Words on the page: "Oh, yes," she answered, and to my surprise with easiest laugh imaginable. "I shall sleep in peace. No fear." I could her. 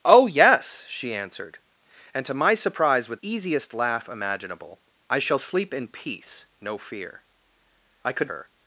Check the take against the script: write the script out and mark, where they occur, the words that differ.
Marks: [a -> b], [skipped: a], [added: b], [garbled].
"Oh, yes," she answered, and to my surprise with easiest laugh imaginable. "I shall sleep in peace. No fear." I could her.